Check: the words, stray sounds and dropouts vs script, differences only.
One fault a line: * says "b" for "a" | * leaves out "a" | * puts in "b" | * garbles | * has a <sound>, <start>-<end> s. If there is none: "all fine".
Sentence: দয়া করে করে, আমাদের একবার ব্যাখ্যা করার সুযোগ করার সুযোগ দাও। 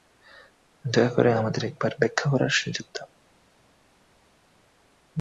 * leaves out "করে"
* leaves out "করার সুযোগ"